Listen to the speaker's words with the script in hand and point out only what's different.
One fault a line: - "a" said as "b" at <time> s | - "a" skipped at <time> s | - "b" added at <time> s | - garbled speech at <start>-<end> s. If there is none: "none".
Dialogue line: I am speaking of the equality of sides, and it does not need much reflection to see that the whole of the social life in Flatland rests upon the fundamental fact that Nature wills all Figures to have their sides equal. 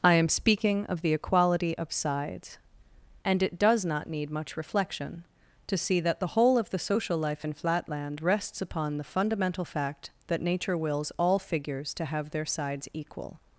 none